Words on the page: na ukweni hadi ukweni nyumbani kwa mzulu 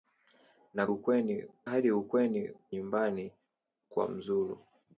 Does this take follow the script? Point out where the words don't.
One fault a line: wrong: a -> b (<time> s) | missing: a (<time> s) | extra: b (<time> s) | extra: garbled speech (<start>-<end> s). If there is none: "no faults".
no faults